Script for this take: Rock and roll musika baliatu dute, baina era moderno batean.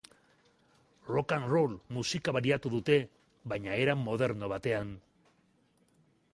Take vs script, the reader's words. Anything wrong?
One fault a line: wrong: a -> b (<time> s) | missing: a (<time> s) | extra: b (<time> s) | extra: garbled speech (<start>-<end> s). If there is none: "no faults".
no faults